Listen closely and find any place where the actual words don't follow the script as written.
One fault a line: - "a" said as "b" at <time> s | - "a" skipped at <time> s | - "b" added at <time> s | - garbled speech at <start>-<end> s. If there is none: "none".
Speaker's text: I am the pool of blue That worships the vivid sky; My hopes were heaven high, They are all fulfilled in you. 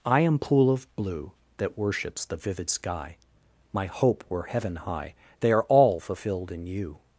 - "the" skipped at 0.4 s
- "hopes" said as "hope" at 3.9 s